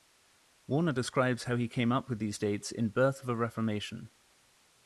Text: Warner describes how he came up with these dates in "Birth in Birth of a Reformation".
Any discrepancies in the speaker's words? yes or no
yes